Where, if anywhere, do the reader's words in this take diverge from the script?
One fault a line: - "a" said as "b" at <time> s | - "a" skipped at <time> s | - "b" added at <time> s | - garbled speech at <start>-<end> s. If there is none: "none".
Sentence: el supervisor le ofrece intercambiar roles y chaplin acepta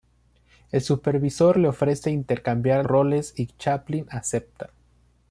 none